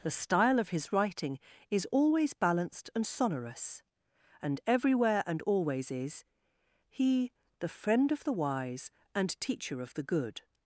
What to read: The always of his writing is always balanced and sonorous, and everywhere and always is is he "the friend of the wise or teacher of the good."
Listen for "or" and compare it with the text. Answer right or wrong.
wrong